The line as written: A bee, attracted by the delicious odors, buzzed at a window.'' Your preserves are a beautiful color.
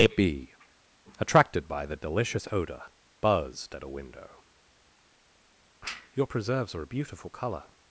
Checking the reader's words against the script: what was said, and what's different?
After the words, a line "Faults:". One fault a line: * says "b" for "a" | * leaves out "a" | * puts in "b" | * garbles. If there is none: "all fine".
A bee, attracted by the delicious odor, buzzed at a window.'' Your preserves are a beautiful color.
Faults:
* says "odor" for "odors"